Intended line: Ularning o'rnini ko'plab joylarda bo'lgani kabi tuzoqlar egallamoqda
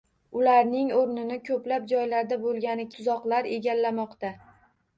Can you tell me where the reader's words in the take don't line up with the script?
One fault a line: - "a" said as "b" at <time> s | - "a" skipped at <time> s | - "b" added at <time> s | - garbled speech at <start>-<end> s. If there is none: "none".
- "kabi" skipped at 2.9 s